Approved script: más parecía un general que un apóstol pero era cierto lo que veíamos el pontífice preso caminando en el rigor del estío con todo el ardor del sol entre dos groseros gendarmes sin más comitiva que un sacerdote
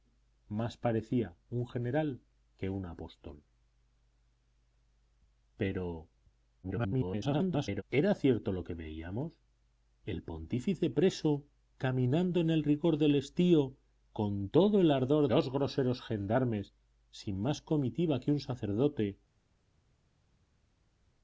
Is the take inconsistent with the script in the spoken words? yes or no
yes